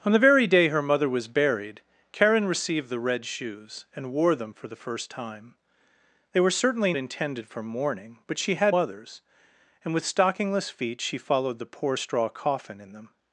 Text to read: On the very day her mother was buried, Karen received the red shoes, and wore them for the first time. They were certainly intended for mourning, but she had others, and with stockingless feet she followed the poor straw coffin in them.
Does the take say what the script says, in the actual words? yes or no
yes